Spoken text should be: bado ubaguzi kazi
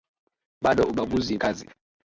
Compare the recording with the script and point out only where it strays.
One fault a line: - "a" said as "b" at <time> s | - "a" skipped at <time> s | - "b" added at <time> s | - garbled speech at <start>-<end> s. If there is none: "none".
none